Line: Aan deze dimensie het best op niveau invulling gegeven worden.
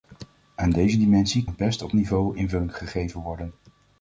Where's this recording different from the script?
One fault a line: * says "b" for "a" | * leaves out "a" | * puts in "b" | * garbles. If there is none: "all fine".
all fine